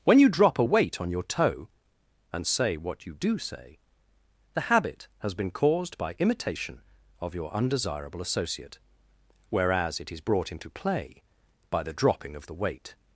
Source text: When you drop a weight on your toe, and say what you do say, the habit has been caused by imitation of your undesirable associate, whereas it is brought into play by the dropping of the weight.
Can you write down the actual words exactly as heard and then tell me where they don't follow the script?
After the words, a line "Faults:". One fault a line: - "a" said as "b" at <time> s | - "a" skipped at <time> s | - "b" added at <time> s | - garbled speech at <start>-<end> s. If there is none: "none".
When you drop a weight on your toe, and say what you do say, the habit has been caused by imitation of your undesirable associate, whereas it is brought into play by the dropping of the weight.
Faults:
none